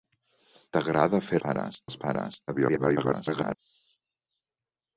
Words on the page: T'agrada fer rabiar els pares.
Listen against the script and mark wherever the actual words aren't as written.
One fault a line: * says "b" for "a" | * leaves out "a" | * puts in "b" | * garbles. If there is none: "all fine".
* says "pares" for "rabiar"
* garbles